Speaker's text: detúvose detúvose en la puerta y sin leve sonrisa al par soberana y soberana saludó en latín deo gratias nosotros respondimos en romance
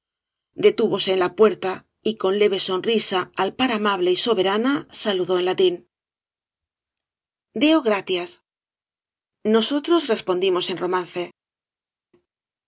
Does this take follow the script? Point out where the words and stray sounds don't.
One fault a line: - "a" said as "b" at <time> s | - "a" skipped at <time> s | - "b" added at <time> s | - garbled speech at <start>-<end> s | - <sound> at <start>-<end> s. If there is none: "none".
- "detúvose" skipped at 1.1 s
- "sin" said as "con" at 2.2 s
- "soberana" said as "amable" at 3.8 s